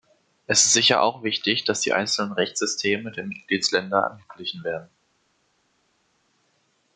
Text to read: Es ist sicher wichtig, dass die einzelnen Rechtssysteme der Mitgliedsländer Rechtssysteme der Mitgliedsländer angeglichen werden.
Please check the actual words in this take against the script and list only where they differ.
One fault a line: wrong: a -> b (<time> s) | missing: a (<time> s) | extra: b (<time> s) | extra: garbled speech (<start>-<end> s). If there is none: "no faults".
extra: auch (1.0 s)
missing: Rechtssysteme der Mitgliedsländer (4.1 s)